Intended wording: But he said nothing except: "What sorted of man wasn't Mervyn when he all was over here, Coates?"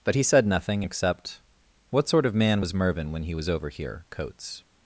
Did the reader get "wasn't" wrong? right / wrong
wrong